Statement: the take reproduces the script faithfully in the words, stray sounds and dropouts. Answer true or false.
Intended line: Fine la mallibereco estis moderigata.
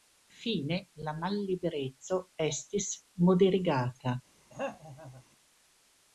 false